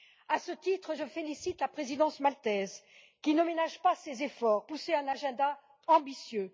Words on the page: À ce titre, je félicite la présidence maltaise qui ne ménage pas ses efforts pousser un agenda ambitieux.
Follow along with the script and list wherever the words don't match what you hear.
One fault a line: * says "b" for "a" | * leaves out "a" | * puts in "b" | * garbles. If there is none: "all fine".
all fine